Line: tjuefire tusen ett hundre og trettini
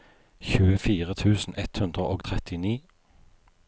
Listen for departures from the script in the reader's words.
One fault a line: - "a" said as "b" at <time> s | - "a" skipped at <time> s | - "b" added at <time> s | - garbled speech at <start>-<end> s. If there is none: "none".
none